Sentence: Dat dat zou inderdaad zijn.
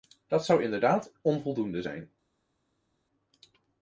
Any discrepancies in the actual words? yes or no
yes